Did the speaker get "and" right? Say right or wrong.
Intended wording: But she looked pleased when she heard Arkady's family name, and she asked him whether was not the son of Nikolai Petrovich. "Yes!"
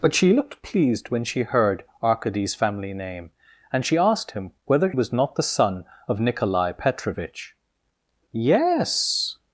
right